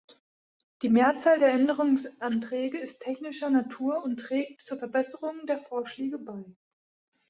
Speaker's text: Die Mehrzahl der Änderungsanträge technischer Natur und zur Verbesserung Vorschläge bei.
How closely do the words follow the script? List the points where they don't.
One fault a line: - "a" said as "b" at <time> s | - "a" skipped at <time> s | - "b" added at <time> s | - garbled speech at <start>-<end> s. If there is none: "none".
- "ist" added at 2.8 s
- "trägt" added at 4.2 s
- "der" added at 5.5 s